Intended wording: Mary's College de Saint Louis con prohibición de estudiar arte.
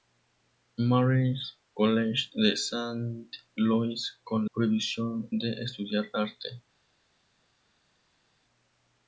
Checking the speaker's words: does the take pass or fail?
pass